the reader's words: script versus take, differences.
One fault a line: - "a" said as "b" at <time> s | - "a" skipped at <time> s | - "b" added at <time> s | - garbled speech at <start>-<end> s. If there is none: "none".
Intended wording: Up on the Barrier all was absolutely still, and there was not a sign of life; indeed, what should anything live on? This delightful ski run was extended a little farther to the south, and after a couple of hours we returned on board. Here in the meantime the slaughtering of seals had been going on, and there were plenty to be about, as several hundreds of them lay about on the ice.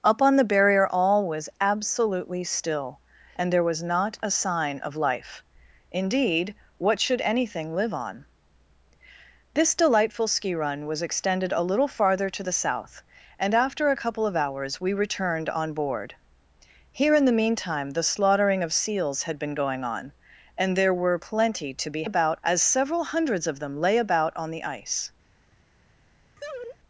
none